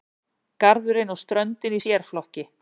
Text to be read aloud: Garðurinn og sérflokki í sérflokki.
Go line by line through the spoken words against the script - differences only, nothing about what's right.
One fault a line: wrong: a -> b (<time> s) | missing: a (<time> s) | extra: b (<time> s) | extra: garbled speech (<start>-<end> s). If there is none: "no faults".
wrong: sérflokki -> ströndin (1.2 s)